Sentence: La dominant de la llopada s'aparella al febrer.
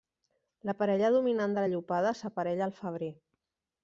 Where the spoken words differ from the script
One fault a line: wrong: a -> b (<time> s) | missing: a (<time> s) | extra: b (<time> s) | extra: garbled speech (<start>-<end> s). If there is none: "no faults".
extra: parella (0.8 s)